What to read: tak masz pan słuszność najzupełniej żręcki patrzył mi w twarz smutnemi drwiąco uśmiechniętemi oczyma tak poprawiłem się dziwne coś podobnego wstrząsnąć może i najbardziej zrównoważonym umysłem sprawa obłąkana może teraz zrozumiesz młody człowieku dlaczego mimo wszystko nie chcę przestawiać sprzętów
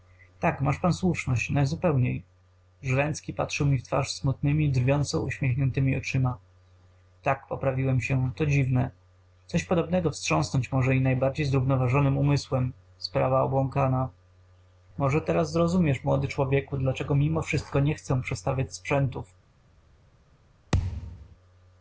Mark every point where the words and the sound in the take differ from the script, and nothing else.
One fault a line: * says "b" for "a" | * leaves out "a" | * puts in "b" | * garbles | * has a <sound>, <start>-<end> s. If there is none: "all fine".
* puts in "to"
* has a thud, 20.7-21.4 s